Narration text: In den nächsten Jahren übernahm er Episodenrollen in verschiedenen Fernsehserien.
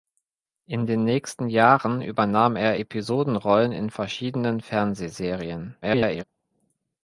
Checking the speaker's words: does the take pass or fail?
fail